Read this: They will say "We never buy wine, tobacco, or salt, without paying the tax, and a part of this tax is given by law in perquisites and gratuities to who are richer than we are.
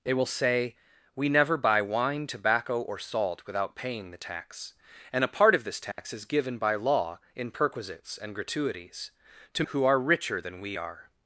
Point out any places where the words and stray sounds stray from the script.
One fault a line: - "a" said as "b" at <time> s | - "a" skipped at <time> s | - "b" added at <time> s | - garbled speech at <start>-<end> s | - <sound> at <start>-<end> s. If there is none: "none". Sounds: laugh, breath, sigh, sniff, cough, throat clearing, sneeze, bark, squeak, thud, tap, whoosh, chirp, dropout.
- dropout at 5.9-6.0 s